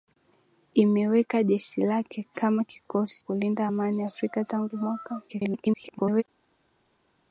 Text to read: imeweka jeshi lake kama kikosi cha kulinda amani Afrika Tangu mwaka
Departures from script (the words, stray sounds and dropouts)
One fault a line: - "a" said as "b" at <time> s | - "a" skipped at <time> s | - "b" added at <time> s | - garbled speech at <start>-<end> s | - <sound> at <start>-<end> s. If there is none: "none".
- "cha" skipped at 3.2 s
- garbled speech at 5.3-6.2 s